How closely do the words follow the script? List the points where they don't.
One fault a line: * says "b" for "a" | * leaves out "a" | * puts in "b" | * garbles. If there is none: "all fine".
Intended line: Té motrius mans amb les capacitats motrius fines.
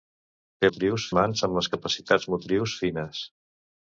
all fine